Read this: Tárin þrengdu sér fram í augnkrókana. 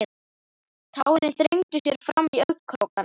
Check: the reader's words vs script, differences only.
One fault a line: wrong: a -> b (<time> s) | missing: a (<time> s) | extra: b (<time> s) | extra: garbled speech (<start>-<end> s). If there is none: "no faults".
no faults